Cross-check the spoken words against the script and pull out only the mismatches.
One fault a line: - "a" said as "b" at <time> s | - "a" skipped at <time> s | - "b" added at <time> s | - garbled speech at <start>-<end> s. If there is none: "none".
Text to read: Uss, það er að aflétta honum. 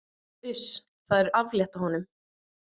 none